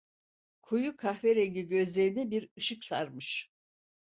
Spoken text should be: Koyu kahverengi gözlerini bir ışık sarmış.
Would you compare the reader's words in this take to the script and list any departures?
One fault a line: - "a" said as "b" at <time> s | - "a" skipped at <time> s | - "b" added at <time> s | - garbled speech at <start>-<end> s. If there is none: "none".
none